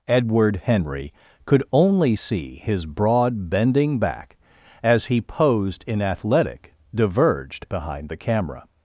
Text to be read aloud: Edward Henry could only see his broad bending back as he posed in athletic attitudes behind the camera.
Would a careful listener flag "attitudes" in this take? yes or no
yes